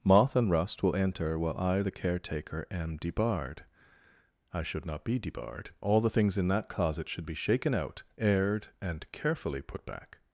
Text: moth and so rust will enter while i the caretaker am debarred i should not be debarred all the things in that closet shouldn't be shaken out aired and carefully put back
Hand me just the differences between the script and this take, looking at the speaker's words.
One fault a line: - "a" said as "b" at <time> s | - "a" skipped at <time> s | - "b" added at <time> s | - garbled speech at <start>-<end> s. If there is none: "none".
- "so" skipped at 0.5 s
- "shouldn't" said as "should" at 7.1 s